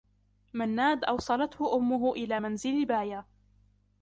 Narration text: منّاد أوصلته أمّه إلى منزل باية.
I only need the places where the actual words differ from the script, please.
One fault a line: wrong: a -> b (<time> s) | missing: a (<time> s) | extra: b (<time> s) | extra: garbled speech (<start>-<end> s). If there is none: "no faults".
no faults